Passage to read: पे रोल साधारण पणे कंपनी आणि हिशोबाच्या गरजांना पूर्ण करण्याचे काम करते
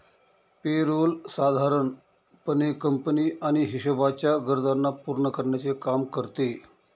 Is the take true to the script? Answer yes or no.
yes